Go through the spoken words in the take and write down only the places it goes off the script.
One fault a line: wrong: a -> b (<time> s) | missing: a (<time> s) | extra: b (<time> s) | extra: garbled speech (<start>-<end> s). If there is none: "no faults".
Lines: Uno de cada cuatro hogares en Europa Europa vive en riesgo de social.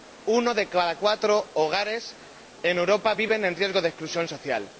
missing: Europa (3.1 s)
extra: exclusión (3.9 s)